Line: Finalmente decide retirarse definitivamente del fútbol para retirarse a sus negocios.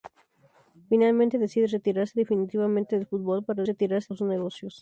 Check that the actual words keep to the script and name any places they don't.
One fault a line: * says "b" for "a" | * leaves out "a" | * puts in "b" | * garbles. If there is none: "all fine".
all fine